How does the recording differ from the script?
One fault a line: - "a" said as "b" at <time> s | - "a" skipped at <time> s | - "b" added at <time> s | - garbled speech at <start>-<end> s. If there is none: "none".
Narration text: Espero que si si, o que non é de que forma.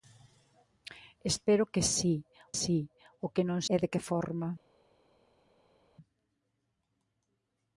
none